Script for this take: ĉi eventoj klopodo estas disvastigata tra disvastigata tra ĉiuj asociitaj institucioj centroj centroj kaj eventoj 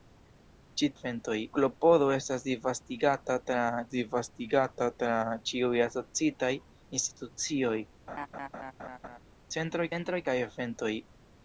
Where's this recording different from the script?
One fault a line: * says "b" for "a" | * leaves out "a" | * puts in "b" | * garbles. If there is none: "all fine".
all fine